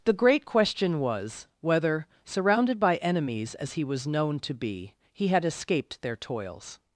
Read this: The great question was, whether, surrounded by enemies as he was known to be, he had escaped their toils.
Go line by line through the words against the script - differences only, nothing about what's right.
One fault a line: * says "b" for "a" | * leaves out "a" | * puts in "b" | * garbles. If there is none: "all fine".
all fine